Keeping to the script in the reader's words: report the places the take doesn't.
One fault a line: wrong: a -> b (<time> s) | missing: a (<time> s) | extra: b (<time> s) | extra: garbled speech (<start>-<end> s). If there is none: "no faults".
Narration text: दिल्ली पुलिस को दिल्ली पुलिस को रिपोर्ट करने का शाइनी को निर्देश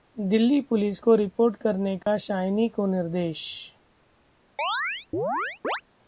missing: दिल्ली पुलिस को (1.1 s)